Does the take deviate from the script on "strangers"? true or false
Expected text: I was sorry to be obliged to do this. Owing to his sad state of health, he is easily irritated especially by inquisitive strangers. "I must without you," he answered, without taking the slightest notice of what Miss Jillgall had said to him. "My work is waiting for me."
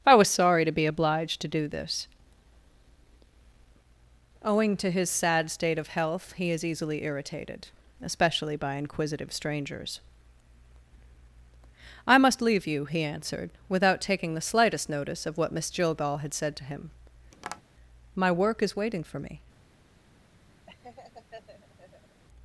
false